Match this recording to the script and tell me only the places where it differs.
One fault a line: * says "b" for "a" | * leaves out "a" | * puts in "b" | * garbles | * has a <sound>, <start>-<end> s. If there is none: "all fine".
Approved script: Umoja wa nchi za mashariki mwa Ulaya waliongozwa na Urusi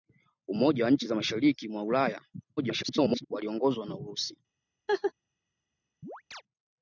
* garbles
* has a laugh, 4.9-5.1 s
* has a chirp, 6.0-6.4 s